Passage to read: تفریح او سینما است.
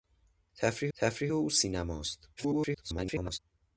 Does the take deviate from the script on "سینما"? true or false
false